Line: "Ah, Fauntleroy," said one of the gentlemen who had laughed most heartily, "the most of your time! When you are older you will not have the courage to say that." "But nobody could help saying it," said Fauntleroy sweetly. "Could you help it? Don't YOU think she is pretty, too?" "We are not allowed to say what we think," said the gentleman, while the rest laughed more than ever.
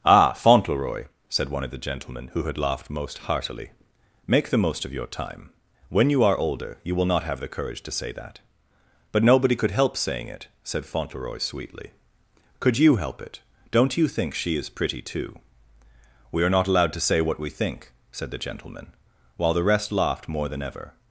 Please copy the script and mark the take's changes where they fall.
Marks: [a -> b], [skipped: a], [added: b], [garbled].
"Ah, Fauntleroy," said one of the gentlemen who had laughed most heartily, [added: make] "the most of your time! When you are older you will not have the courage to say that." "But nobody could help saying it," said Fauntleroy sweetly. "Could you help it? Don't YOU think she is pretty, too?" "We are not allowed to say what we think," said the gentleman, while the rest laughed more than ever.